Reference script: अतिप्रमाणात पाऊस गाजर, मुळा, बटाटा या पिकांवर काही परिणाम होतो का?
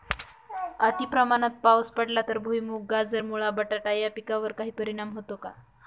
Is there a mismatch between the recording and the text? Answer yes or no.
yes